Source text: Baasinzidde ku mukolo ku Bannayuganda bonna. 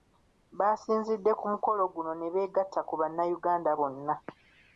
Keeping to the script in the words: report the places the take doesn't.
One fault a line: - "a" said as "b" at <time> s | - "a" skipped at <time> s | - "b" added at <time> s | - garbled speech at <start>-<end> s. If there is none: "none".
- "guno ne beegatta" added at 1.9 s